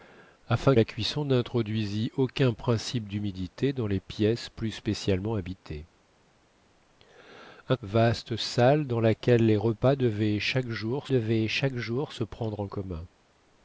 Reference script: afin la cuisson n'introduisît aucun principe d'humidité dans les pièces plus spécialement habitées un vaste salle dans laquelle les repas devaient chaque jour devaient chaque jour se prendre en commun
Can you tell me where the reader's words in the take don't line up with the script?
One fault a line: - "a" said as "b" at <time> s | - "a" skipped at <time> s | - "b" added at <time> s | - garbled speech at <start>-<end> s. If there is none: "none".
none